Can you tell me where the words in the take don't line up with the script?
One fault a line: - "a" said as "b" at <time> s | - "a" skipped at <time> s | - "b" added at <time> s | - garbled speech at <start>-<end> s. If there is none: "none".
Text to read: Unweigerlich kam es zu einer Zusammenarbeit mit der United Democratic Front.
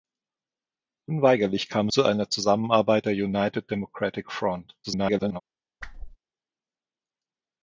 - "es" skipped at 1.9 s
- "mit" skipped at 3.1 s
- garbled speech at 4.8-5.4 s